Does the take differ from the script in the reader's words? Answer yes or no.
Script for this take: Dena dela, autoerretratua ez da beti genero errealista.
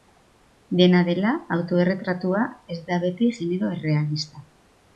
no